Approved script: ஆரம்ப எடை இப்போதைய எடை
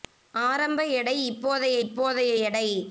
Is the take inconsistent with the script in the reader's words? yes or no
yes